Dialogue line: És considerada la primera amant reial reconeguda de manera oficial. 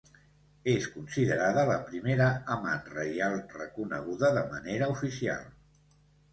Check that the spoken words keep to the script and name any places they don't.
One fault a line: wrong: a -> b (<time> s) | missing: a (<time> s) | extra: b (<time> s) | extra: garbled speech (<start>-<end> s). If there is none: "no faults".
no faults